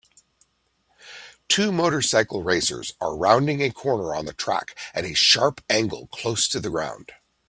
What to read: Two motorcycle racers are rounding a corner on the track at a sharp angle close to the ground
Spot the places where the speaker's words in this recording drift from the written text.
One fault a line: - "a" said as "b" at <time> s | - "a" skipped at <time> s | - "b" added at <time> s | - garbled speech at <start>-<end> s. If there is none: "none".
none